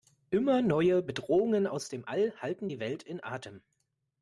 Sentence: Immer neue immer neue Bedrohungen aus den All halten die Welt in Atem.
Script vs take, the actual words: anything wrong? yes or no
yes